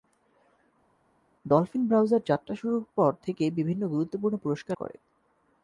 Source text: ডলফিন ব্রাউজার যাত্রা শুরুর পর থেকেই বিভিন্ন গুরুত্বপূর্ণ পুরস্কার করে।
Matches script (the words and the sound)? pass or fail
pass